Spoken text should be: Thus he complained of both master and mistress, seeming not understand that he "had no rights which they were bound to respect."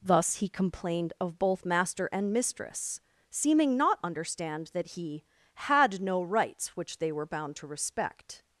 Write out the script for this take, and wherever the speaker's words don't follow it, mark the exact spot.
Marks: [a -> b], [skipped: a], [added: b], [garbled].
Thus he complained of both master and mistress, seeming not understand that he "had no rights which they were bound to respect."